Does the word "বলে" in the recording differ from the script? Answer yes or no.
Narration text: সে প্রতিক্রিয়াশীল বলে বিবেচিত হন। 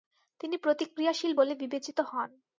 no